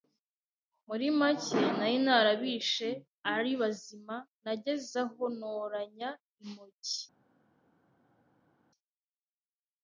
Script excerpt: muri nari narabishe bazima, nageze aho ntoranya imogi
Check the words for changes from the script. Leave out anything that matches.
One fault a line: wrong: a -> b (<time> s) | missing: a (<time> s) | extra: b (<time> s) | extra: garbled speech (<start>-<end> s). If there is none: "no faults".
extra: make (1.2 s)
extra: ari (3.3 s)